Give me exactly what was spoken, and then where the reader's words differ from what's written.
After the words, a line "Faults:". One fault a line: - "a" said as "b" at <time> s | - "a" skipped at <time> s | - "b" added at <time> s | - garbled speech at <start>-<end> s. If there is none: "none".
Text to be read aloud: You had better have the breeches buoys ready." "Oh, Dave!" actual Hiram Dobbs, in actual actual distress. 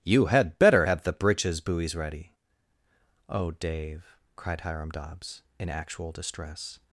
You had better have the breeches buoys ready." "Oh, Dave!" cried Hiram Dobbs, in actual distress.
Faults:
- "actual" said as "cried" at 4.4 s
- "actual" skipped at 6.1 s